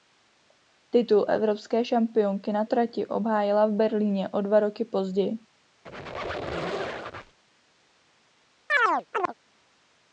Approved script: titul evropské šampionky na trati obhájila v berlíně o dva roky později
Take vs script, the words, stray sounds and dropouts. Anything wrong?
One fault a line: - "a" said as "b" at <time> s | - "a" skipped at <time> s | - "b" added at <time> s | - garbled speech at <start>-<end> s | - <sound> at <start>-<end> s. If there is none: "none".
- squeak at 5.9-7.4 s
- chirp at 8.7-9.3 s